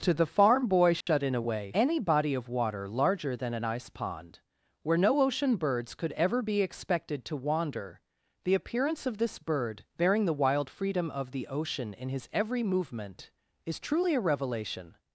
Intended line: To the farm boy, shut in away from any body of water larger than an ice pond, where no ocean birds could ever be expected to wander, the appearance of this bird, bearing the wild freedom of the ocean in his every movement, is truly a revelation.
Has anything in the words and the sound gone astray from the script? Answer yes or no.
yes